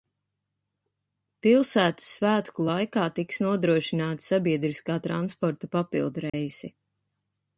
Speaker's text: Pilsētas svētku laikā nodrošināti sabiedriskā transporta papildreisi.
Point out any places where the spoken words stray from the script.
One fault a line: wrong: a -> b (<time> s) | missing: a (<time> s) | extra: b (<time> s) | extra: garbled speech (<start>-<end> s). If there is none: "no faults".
extra: tiks (3.2 s)